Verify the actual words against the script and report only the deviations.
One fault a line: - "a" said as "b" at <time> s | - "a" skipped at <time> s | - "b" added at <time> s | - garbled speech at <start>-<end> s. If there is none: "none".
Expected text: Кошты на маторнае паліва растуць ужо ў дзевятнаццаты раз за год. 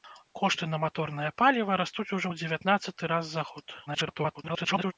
- garbled speech at 3.9-4.9 s